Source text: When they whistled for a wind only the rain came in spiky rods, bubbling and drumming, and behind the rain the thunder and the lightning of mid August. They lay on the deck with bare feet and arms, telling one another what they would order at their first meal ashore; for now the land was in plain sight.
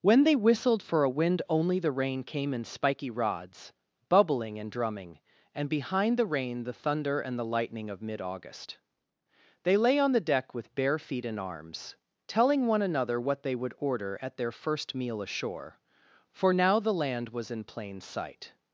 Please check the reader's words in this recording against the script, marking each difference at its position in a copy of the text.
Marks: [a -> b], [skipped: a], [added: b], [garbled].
When they whistled for a wind only the rain came in spiky rods, bubbling and drumming, and behind the rain the thunder and the lightning of mid August. They lay on the deck with bare feet and arms, telling one another what they would order at their first meal ashore; for now the land was in plain sight.